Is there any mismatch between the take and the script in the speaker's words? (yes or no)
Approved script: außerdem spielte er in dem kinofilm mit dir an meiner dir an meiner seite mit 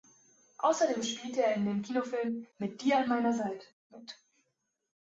yes